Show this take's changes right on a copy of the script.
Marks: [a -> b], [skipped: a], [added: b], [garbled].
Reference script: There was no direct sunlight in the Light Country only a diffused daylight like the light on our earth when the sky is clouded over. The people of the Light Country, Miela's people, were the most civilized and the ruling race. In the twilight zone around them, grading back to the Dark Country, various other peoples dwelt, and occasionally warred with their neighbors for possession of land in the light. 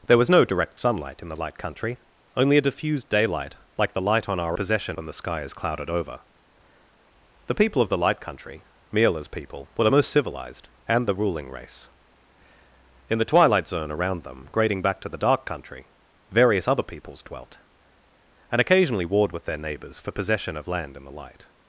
There was no direct sunlight in the Light Country only a diffused daylight like the light on our [earth -> possession] when the sky is clouded over. The people of the Light Country, Miela's people, were the most civilized and the ruling race. In the twilight zone around them, grading back to the Dark Country, various other peoples dwelt, and occasionally warred with their neighbors for possession of land in the light.